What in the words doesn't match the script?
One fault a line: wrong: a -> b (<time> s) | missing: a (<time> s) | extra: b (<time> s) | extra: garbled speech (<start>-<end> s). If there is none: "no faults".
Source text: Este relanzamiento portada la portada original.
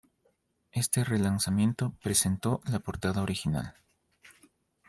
wrong: portada -> presentó (2.0 s)